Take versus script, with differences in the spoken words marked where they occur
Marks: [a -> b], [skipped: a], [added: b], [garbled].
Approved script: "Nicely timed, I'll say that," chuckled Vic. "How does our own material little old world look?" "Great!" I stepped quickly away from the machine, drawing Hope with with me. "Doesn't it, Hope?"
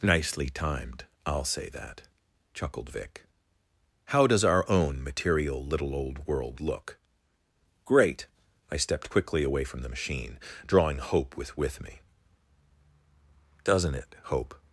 "Nicely timed, I'll say that," chuckled Vic. "How does our own material little old world look?" "Great!" I stepped quickly away from the machine, drawing Hope with with me. "Doesn't it, Hope?"